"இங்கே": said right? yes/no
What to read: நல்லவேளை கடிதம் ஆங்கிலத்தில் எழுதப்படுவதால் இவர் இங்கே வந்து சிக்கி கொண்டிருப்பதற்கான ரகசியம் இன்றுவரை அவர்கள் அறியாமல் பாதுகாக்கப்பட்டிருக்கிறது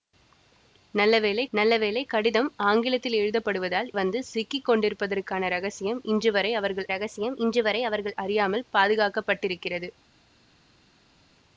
no